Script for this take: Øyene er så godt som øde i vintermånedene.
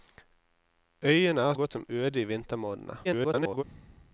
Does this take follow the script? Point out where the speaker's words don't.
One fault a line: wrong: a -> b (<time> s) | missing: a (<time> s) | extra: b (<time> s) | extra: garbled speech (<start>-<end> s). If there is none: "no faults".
missing: så (1.5 s)
extra: garbled speech (3.0-3.6 s)